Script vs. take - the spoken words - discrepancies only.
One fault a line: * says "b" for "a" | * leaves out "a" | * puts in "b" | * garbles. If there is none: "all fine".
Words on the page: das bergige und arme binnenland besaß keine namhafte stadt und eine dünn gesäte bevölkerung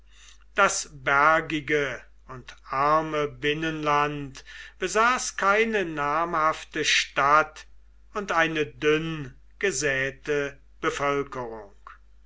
all fine